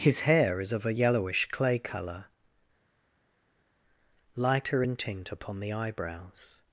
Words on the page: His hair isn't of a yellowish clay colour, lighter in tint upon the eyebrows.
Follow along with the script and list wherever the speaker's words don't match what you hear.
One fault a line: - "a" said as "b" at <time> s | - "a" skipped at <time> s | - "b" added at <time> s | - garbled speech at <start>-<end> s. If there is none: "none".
- "isn't" said as "is" at 0.6 s